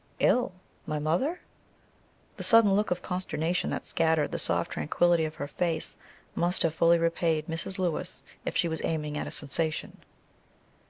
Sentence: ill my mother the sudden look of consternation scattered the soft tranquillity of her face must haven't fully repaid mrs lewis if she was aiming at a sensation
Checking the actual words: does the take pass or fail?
fail